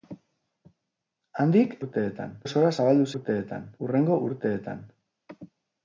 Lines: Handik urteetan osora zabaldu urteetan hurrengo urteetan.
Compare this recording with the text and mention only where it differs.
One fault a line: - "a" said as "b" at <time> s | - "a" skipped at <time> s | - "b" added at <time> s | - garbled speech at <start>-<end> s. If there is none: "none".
none